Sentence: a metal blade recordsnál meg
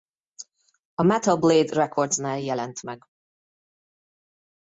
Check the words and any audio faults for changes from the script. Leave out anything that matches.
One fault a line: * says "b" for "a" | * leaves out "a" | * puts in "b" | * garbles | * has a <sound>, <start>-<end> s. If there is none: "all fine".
* puts in "jelent"